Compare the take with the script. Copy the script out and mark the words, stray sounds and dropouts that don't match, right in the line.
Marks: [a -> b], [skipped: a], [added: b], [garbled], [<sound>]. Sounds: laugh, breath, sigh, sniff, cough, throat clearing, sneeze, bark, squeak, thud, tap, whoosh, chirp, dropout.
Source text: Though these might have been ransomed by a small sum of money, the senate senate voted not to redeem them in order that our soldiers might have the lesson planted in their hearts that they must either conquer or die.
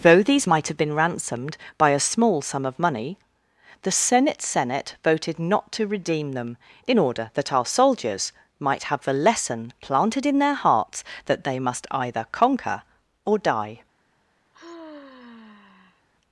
Though these might have been ransomed by a small sum of money, the senate senate voted not to redeem them in order that our soldiers might have the lesson planted in their hearts that they must either conquer or die. [sigh]